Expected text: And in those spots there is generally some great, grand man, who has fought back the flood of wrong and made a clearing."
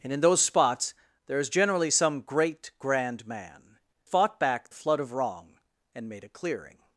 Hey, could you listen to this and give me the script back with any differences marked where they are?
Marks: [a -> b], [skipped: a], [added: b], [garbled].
And in those spots there is generally some great, grand man, [skipped: who has] fought back [skipped: the] flood of wrong and made a clearing."